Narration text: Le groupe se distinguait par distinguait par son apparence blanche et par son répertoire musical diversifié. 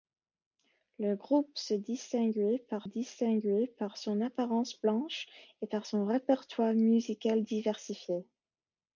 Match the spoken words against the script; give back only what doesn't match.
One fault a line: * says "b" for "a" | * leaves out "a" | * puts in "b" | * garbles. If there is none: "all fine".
all fine